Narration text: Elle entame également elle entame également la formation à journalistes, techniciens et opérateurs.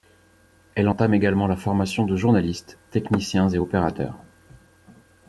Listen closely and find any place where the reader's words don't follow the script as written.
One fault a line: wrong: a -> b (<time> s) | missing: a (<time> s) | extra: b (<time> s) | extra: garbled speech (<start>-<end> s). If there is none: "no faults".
missing: elle entame également (1.5 s)
wrong: à -> de (2.0 s)